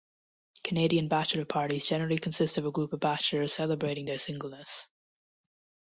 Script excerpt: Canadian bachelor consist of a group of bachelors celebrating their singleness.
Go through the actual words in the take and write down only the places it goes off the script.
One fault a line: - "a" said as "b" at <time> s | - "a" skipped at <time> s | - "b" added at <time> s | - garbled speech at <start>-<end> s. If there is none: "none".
- "parties generally" added at 1.4 s